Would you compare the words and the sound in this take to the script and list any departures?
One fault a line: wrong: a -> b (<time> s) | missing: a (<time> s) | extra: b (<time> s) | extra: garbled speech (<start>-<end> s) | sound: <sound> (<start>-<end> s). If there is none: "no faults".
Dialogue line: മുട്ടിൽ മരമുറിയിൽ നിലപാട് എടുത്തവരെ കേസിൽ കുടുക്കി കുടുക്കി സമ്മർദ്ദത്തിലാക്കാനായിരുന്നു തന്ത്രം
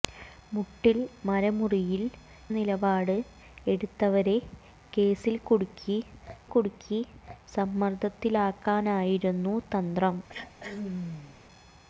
sound: throat clearing (10.3-11.4 s)